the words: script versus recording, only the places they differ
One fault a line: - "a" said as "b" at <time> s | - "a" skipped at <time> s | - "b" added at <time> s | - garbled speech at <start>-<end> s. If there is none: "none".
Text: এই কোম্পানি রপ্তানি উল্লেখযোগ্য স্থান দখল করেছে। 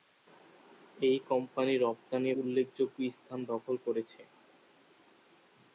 none